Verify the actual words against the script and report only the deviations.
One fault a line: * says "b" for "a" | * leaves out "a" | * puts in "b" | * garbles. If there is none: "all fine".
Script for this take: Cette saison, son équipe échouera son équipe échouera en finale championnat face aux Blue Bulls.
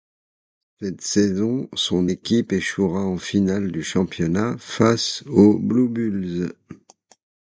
* leaves out "son équipe échouera"
* puts in "du"